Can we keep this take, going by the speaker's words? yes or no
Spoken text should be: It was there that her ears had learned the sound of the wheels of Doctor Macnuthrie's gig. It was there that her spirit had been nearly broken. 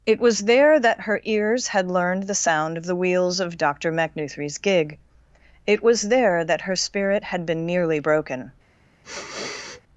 yes